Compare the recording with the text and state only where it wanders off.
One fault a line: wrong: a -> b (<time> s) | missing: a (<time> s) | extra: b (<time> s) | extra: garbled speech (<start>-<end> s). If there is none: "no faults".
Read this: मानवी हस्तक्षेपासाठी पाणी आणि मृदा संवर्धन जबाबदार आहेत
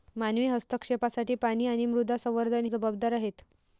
no faults